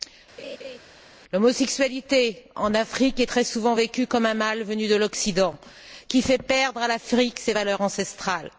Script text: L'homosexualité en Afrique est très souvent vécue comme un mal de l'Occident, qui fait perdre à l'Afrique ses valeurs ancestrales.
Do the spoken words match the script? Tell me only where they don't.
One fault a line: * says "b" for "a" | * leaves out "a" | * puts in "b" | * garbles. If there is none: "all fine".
* puts in "venu"